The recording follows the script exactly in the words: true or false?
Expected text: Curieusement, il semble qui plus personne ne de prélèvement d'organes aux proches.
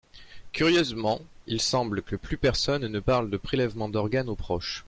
false